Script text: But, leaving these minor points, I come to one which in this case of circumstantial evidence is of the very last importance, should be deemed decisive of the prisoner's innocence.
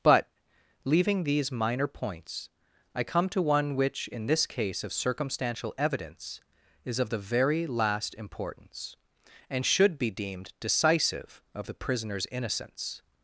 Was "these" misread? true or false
false